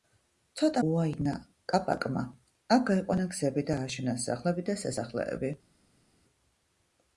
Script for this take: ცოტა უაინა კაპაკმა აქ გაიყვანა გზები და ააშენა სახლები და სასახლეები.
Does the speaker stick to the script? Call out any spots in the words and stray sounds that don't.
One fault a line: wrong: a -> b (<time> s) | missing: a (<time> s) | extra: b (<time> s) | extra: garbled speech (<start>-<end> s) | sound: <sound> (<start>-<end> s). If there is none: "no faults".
no faults